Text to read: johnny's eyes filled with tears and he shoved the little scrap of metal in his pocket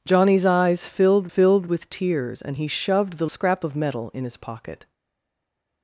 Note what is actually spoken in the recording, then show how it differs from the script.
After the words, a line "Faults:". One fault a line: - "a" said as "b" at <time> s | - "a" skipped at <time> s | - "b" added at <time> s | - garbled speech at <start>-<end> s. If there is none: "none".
johnny's eyes filled filled with tears and he shoved the scrap of metal in his pocket
Faults:
- "filled" added at 1.3 s
- "little" skipped at 3.3 s